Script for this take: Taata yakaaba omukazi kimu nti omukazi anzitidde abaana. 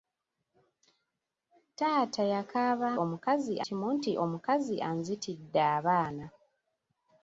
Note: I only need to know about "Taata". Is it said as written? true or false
true